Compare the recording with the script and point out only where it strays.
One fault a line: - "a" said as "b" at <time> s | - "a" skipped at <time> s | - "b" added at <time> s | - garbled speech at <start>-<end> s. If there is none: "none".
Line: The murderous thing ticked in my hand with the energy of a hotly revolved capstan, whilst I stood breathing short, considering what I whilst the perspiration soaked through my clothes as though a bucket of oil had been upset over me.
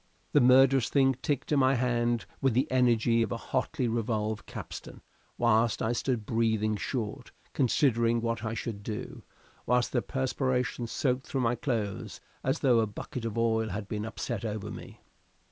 - "should do" added at 8.5 s